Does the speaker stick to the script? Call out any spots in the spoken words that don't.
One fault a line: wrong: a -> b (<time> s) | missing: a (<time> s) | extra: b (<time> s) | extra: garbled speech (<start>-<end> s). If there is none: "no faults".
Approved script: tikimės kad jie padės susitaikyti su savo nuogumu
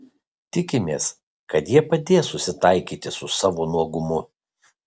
no faults